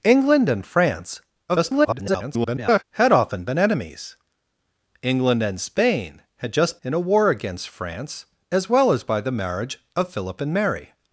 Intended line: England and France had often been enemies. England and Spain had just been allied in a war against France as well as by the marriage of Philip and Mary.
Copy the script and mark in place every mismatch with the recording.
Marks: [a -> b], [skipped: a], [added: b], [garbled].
England and France [garbled] had often been enemies. England and Spain had just [skipped: been allied] in a war against France as well as by the marriage of Philip and Mary.